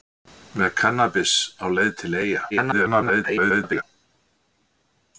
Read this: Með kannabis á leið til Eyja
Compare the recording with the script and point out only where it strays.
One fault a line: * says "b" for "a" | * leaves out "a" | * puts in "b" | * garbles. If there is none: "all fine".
* garbles